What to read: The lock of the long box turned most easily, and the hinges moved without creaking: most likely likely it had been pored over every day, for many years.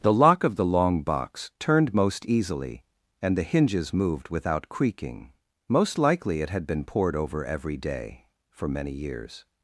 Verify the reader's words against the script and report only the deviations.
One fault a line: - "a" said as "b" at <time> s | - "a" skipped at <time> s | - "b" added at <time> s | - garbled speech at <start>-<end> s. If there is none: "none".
- "likely" skipped at 6.4 s